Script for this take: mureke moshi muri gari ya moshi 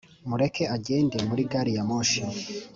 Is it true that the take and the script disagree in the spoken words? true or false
true